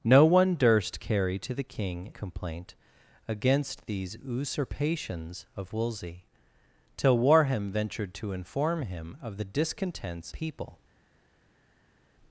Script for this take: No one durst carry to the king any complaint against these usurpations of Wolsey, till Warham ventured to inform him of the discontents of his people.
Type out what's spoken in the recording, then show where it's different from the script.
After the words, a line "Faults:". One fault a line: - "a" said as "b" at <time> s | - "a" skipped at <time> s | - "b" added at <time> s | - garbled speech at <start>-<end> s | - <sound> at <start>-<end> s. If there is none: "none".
No one durst carry to the king complaint against these usurpations of Wolsey, till Warham ventured to inform him of the discontents people.
Faults:
- "any" skipped at 2.1 s
- "of his" skipped at 10.3 s